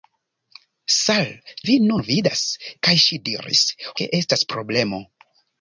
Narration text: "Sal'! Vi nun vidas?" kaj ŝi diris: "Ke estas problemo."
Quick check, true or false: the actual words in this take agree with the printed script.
true